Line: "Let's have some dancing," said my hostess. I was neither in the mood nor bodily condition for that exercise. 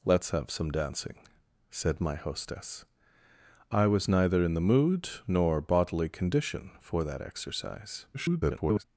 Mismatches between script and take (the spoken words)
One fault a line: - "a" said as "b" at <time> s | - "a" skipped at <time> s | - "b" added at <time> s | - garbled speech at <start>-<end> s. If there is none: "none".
- garbled speech at 8.1-8.8 s